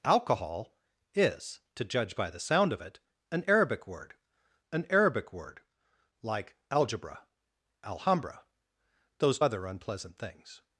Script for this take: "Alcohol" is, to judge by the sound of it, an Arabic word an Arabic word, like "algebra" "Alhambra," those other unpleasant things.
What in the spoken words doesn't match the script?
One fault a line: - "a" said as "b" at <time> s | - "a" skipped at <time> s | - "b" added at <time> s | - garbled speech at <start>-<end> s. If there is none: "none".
none